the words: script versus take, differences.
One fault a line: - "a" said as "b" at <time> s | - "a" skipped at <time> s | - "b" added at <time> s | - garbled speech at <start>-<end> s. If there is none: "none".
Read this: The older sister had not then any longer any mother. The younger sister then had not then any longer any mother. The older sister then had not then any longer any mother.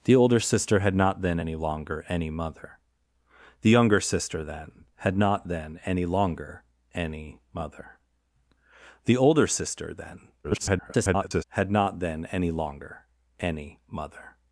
- garbled speech at 10.4-11.4 s